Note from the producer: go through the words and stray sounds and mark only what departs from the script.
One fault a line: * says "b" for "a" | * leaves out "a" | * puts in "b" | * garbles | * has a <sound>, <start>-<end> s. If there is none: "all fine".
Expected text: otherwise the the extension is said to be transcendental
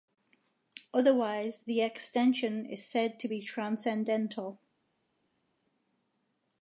* leaves out "the"